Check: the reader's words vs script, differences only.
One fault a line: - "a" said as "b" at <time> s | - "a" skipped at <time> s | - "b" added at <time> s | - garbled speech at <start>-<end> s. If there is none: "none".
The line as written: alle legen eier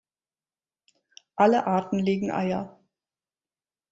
- "arten" added at 1.7 s